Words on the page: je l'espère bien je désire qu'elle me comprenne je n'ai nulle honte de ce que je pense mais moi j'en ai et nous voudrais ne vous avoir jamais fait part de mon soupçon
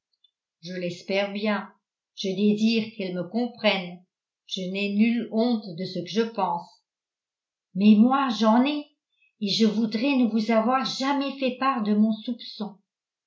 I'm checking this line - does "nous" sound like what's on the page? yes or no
no